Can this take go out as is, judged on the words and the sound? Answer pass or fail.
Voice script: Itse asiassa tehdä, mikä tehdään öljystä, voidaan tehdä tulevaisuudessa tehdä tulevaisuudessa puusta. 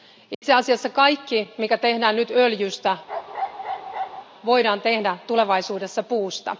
fail